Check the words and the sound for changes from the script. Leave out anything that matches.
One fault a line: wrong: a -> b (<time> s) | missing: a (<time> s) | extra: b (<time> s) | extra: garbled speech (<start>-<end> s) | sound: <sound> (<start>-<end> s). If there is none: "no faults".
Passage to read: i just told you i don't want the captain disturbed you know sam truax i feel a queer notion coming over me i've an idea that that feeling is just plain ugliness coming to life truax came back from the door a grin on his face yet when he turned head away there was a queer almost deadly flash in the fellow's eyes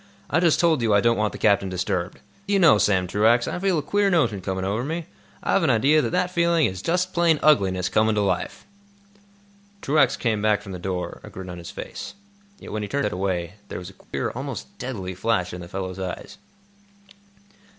sound: dropout (14.0-14.1 s)